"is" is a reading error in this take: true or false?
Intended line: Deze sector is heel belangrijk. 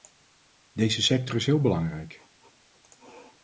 false